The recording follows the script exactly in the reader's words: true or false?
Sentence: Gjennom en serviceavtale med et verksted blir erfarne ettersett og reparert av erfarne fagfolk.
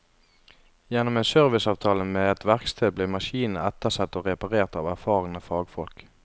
false